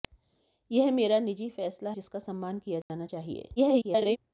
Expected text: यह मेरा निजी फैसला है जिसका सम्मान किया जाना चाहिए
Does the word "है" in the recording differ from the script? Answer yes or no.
yes